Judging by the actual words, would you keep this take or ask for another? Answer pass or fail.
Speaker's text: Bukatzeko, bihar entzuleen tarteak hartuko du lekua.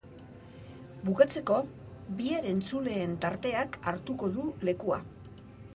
pass